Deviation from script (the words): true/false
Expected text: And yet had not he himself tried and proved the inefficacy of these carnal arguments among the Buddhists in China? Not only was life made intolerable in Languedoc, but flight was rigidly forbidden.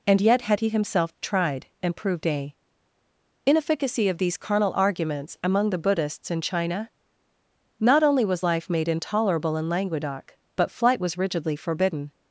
true